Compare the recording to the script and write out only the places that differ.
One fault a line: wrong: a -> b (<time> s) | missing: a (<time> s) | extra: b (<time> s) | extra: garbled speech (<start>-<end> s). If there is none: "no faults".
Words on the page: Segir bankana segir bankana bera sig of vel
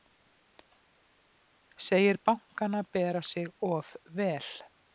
missing: segir bankana (2.8 s)